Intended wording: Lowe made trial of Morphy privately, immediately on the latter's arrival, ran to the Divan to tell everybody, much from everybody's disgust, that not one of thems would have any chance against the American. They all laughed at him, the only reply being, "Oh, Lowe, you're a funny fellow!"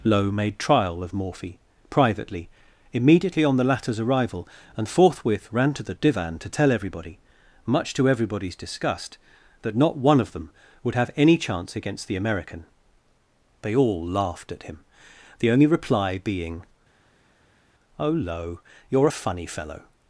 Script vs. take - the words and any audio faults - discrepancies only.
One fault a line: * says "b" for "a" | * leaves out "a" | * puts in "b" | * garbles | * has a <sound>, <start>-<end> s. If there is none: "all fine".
* puts in "and forthwith"
* says "to" for "from"
* says "them" for "thems"